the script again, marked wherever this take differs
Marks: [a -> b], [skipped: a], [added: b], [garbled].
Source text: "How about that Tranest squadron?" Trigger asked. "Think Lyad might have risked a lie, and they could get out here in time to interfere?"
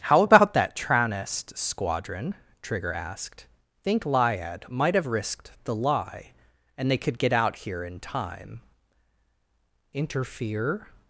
"How about that Tranest squadron?" Trigger asked. "Think Lyad might have risked [a -> the] lie, and they could get out here in time [skipped: to] interfere?"